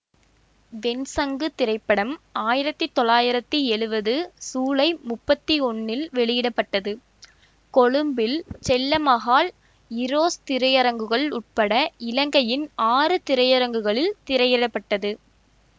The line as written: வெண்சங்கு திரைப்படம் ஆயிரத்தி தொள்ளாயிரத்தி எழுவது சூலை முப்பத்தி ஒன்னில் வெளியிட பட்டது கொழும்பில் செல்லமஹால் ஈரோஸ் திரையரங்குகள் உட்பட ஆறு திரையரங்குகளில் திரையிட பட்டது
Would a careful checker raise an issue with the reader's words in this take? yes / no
yes